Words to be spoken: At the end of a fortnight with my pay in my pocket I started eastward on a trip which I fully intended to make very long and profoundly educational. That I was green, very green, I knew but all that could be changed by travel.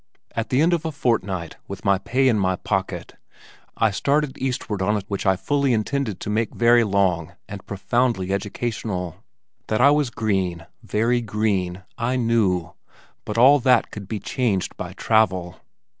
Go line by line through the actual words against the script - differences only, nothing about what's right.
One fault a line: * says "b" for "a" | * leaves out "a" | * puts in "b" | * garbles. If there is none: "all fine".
* leaves out "trip"